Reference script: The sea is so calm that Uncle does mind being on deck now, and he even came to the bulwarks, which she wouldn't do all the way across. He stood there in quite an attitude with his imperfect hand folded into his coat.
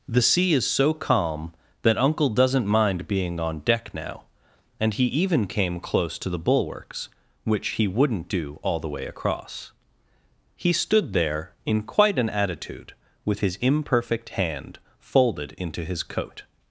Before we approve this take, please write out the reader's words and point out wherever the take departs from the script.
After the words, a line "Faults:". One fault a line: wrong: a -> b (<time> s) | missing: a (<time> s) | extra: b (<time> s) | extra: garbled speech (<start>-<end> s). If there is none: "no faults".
The sea is so calm that Uncle doesn't mind being on deck now, and he even came close to the bulwarks, which he wouldn't do all the way across. He stood there in quite an attitude with his imperfect hand folded into his coat.
Faults:
wrong: does -> doesn't (2.3 s)
extra: close (5.8 s)
wrong: she -> he (7.7 s)